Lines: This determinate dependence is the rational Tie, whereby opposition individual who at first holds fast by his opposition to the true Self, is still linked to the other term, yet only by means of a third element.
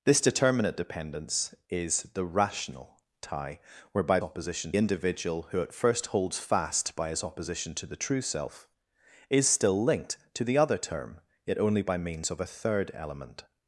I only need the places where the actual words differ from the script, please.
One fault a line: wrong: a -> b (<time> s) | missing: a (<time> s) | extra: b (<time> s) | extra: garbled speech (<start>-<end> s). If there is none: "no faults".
no faults